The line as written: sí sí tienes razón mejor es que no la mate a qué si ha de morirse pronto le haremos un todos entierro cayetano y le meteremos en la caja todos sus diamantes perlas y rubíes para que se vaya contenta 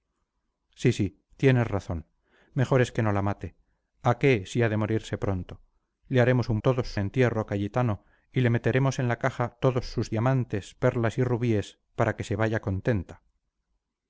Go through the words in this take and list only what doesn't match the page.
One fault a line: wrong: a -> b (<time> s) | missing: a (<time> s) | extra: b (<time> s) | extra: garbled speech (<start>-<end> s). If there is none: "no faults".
no faults